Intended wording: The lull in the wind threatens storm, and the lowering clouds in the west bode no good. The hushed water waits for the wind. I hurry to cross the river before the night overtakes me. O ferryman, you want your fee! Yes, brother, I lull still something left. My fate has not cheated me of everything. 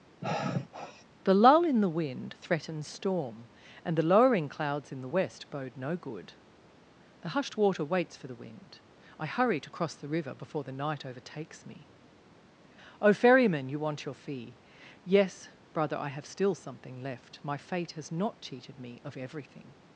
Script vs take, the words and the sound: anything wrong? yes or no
yes